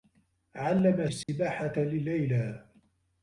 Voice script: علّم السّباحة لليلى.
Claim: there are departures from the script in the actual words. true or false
false